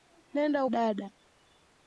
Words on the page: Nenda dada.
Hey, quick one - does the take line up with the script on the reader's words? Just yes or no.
yes